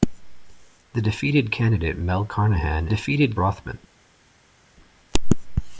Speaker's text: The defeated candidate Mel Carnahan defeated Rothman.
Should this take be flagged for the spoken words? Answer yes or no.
no